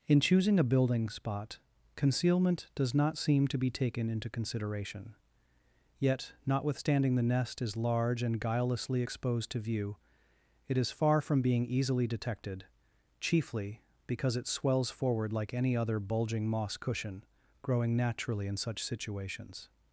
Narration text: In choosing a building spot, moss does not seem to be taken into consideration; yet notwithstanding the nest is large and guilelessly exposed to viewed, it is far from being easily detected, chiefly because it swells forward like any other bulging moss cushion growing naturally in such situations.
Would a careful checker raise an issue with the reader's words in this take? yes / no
yes